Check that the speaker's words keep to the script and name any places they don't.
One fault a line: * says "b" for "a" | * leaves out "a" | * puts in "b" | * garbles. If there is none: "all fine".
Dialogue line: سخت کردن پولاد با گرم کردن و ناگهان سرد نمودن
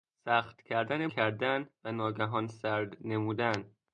* leaves out "پولاد با گرم"